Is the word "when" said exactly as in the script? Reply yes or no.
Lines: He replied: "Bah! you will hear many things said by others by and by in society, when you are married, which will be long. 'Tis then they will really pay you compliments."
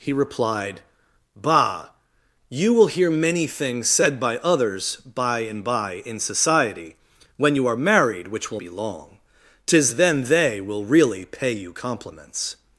yes